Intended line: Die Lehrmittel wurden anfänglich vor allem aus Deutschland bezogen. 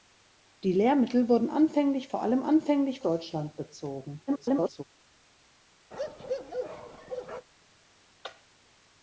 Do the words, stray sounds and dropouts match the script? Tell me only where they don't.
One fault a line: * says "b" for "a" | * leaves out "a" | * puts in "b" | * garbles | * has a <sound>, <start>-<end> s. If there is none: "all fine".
* says "anfänglich" for "aus"
* garbles
* has a bark, 5.9-7.5 s